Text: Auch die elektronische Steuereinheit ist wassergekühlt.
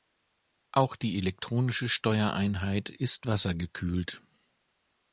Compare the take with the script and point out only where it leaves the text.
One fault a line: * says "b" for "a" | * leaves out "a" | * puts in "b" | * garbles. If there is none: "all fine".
all fine